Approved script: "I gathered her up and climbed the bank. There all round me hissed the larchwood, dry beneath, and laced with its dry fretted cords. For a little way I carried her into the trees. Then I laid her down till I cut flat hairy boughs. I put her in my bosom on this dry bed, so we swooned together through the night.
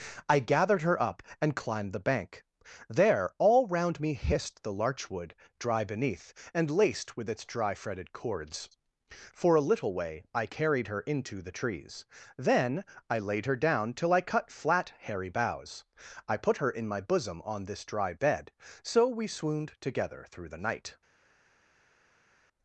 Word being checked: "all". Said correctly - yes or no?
yes